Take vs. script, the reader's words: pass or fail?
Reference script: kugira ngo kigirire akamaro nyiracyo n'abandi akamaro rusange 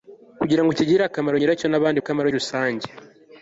pass